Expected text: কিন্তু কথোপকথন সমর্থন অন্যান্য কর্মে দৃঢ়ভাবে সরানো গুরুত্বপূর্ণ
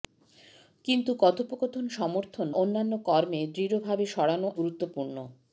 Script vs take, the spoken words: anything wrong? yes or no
no